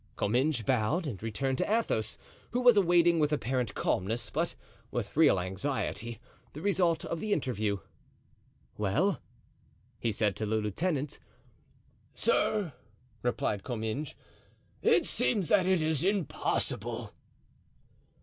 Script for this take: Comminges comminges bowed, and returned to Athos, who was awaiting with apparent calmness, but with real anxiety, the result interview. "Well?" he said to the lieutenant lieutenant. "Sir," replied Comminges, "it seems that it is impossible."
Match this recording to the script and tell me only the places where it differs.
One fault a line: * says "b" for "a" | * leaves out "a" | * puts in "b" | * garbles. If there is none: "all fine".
* leaves out "comminges"
* puts in "of the"
* leaves out "lieutenant"